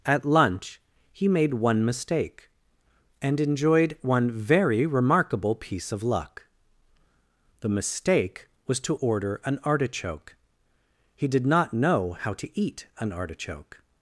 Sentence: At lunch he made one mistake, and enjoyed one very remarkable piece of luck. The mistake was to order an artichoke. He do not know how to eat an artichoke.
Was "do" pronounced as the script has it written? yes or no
no